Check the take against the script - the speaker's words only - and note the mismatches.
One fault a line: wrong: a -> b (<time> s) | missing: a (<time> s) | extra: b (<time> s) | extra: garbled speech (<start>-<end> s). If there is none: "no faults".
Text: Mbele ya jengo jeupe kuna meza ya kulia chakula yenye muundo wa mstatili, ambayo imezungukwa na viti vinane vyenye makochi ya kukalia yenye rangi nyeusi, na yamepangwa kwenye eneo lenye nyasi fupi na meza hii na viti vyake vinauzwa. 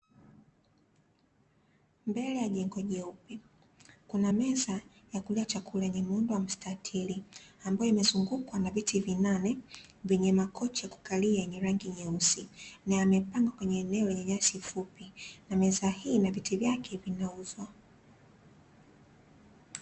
no faults